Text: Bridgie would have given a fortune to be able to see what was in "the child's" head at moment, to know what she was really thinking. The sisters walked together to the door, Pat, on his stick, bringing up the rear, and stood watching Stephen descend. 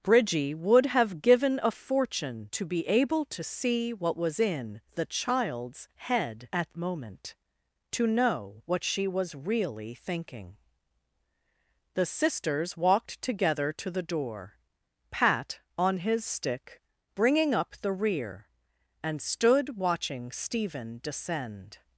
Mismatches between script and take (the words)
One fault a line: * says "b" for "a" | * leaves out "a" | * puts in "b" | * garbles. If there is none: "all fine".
all fine